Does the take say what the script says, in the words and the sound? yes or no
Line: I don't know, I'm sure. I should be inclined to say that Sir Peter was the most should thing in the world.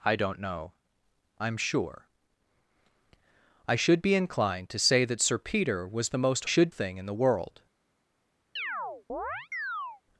no